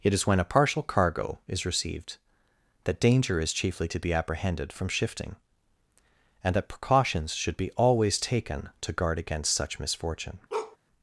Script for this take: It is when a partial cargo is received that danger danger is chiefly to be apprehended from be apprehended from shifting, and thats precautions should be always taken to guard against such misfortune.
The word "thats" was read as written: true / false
false